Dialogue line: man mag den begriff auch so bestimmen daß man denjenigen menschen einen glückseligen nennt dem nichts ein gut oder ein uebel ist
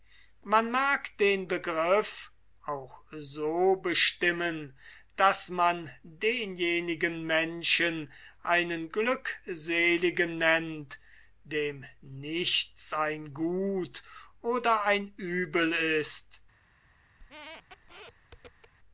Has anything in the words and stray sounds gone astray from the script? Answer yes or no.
yes